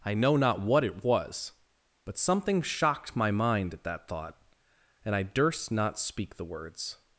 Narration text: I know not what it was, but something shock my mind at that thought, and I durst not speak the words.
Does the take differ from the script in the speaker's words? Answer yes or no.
yes